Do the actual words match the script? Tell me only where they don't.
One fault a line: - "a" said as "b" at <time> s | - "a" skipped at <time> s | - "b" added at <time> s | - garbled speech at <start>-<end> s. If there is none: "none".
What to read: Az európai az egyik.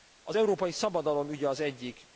- "szabadalom ügye" added at 0.7 s